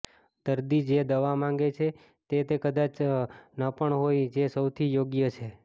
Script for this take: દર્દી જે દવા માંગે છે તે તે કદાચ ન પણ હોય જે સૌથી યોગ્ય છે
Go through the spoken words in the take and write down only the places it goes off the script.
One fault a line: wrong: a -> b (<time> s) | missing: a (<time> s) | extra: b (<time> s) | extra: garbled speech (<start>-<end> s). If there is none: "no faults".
no faults